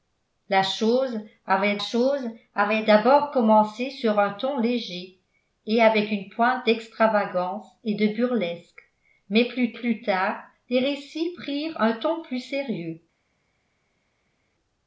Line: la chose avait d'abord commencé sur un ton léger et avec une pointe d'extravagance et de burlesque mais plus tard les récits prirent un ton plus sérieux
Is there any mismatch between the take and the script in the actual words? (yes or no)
yes